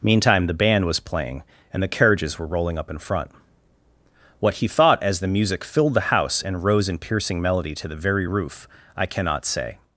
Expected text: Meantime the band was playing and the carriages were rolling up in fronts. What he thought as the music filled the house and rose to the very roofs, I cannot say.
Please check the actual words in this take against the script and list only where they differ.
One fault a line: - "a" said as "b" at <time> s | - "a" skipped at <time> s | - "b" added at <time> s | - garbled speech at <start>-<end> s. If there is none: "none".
- "fronts" said as "front" at 3.0 s
- "in piercing melody" added at 6.9 s
- "roofs" said as "roof" at 8.2 s